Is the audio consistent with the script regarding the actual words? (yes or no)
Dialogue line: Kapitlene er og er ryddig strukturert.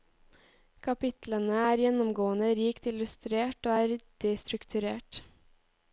no